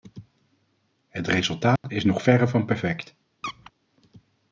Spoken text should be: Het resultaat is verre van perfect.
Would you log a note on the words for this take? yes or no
yes